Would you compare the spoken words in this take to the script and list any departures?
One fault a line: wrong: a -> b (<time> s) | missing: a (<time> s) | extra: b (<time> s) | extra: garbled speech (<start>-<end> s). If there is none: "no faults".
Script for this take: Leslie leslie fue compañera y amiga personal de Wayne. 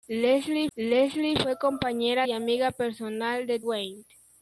no faults